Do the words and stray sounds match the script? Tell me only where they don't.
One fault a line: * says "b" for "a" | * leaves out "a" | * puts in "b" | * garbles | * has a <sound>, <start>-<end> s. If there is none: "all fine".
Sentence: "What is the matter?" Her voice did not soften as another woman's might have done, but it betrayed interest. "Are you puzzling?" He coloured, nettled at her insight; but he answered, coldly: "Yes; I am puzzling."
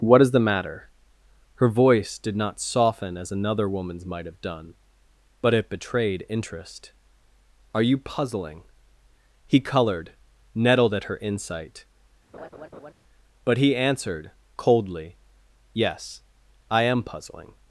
* has a laugh, 12.3-12.9 s